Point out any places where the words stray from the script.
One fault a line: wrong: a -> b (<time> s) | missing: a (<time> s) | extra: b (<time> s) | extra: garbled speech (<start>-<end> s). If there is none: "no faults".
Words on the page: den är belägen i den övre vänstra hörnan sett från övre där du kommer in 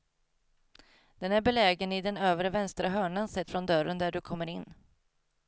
wrong: övre -> dörren (3.7 s)